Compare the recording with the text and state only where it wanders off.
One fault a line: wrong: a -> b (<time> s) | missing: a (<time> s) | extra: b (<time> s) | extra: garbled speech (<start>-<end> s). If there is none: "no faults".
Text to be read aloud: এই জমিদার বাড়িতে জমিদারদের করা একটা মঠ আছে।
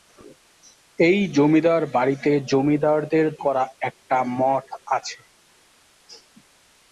no faults